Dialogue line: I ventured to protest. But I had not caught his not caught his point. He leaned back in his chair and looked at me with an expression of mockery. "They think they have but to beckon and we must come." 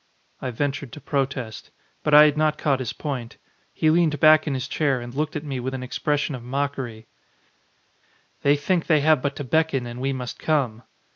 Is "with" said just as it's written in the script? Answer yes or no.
yes